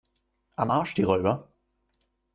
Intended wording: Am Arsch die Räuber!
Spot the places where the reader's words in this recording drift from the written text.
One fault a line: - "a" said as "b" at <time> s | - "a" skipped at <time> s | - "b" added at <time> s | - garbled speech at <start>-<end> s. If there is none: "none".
none